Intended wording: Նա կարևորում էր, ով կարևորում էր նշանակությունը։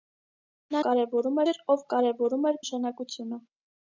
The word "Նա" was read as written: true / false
true